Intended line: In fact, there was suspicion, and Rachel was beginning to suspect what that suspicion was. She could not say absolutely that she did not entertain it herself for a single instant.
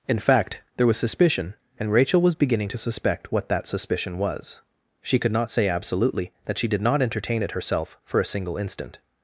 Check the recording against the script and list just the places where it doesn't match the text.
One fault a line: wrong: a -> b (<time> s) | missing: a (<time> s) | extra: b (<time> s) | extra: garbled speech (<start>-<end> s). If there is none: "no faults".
no faults